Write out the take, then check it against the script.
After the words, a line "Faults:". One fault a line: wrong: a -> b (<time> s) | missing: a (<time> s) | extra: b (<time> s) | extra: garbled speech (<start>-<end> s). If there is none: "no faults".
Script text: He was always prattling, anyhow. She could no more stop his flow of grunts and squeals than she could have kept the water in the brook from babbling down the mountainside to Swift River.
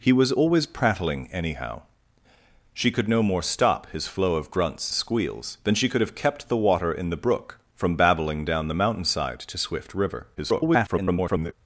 He was always prattling, anyhow. She could no more stop his flow of grunts squeals than she could have kept the water in the brook from babbling down the mountainside to Swift River. [garbled]
Faults:
missing: and (4.9 s)
extra: garbled speech (10.4-11.5 s)